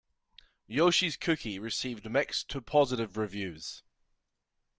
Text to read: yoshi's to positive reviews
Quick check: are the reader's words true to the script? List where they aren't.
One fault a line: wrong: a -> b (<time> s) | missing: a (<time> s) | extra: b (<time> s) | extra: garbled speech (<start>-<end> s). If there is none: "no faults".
extra: cookie received mixed (1.1 s)